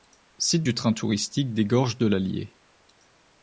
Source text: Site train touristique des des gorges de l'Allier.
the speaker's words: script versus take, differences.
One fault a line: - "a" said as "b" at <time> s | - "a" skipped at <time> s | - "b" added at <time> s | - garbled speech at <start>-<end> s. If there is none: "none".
- "du" added at 0.6 s
- "des" skipped at 1.7 s